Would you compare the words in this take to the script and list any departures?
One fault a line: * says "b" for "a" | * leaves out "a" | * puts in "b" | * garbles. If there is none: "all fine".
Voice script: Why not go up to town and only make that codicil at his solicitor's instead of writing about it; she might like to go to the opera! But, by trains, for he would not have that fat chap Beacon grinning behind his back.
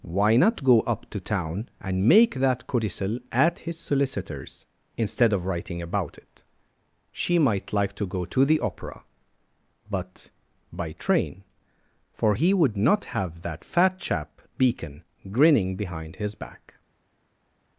* leaves out "only"
* says "train" for "trains"